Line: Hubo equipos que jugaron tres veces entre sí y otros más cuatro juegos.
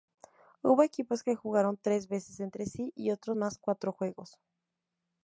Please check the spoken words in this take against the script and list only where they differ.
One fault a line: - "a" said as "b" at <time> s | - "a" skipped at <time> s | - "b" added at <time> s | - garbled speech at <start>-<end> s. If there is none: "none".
none